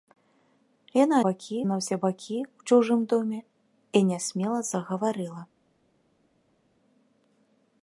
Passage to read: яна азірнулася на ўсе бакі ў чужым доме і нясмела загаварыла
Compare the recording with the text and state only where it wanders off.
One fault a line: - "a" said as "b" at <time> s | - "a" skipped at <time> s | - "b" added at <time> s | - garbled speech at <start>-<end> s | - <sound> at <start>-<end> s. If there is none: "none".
- "азірнулася" said as "бакі" at 1.3 s